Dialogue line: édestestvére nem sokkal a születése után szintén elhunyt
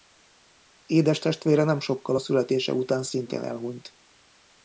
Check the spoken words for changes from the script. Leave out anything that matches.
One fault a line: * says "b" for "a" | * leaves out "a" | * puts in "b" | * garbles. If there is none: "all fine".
all fine